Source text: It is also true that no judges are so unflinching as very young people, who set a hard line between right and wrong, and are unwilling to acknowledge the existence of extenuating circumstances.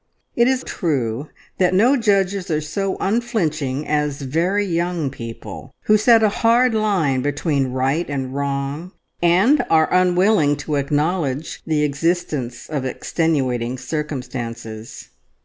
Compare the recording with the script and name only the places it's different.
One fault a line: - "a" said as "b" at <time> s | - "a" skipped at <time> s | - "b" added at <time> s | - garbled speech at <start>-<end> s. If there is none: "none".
- "also" skipped at 0.6 s